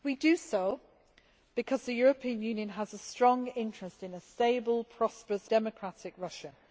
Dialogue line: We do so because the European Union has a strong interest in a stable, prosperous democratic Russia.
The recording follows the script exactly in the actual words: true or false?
true